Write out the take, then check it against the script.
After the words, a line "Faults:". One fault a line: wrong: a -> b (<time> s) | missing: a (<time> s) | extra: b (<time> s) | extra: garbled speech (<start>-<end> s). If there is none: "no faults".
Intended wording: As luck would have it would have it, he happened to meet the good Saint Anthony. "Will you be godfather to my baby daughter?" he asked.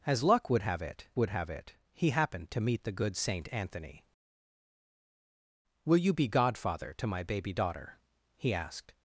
As luck would have it would have it, he happened to meet the good Saint Anthony. "Will you be godfather to my baby daughter?" he asked.
Faults:
no faults